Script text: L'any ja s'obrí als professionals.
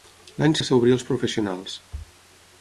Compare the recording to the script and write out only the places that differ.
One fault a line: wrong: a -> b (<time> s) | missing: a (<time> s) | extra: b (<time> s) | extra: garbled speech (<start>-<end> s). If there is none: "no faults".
no faults